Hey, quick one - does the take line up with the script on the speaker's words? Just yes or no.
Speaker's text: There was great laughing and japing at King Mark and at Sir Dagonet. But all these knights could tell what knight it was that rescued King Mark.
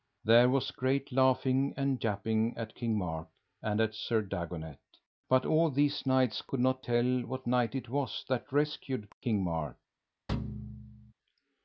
no